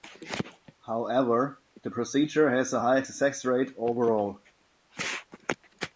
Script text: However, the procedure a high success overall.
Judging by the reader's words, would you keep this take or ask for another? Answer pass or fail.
fail